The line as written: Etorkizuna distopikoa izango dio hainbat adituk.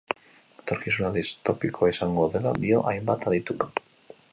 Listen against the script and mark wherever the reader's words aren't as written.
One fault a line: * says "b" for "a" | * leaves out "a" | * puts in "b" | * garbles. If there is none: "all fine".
* puts in "dela"